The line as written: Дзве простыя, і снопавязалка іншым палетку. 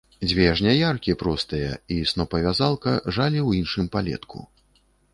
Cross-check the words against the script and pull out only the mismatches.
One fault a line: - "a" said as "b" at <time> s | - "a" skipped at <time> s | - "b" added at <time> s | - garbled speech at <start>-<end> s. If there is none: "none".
- "жняяркі" added at 0.6 s
- "жалі ў" added at 3.1 s